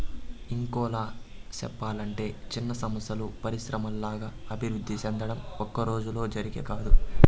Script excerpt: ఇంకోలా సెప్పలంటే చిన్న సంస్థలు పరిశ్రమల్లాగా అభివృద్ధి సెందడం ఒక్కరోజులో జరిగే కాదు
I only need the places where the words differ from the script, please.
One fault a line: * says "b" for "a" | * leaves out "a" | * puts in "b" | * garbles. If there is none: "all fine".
all fine